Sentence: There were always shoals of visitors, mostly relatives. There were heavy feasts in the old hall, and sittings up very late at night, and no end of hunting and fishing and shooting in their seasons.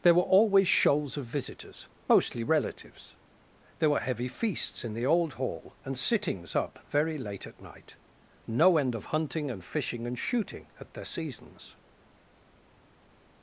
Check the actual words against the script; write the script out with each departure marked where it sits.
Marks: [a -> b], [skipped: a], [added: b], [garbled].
There were always shoals of visitors, mostly relatives. There were heavy feasts in the old hall, and sittings up very late at night, [skipped: and] no end of hunting and fishing and shooting [in -> at] their seasons.